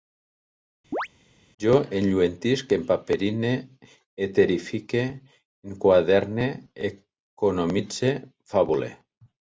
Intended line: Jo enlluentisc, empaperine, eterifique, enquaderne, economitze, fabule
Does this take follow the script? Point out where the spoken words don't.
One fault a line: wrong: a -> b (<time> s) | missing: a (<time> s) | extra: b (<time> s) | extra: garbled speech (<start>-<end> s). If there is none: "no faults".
no faults